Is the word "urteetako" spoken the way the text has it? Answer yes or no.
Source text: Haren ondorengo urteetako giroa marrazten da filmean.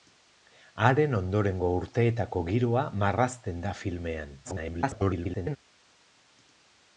yes